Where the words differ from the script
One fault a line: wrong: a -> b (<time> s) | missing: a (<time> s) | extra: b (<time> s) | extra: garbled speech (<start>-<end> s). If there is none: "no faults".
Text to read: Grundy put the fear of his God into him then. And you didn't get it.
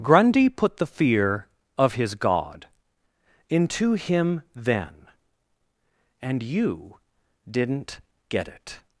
no faults